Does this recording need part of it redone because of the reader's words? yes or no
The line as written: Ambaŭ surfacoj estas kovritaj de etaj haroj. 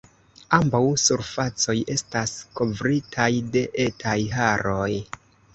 no